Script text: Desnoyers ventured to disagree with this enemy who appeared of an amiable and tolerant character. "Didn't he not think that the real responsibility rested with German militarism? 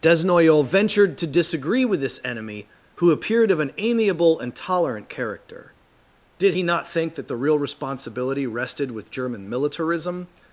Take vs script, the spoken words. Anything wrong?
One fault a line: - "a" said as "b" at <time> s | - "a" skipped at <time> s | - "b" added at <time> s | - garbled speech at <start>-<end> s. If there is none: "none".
- "Didn't" said as "Did" at 6.4 s